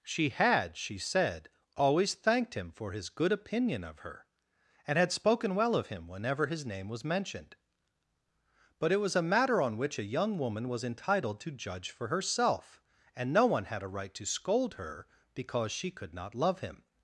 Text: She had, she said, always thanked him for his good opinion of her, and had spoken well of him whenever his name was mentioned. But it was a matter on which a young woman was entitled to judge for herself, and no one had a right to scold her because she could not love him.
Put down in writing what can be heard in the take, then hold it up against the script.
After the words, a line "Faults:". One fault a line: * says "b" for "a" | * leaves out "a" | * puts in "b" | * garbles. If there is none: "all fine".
She had, she said, always thanked him for his good opinion of her, and had spoken well of him whenever his name was mentioned. But it was a matter on which a young woman was entitled to judge for herself, and no one had a right to scold her because she could not love him.
Faults:
all fine